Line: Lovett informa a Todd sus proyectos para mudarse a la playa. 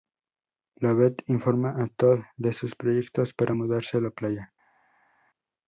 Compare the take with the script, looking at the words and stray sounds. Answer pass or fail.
fail